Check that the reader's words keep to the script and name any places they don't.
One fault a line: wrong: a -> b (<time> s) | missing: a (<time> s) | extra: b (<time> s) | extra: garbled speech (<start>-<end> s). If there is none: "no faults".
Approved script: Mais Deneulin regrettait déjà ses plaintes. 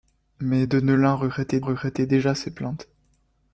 extra: regrettait (1.6 s)